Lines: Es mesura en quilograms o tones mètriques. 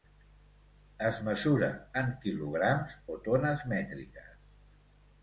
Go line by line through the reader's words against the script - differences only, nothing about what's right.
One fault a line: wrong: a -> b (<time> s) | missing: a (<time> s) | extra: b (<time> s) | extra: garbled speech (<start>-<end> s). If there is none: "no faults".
no faults